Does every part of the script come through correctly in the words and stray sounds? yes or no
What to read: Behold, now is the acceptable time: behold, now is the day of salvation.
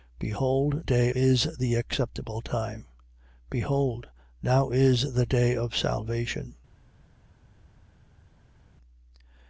no